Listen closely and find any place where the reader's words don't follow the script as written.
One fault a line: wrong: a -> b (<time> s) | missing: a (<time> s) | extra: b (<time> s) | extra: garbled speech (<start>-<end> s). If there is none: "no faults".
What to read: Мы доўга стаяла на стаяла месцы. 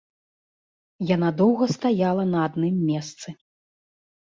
wrong: Мы -> Яна (1.1 s)
wrong: стаяла -> адным (2.5 s)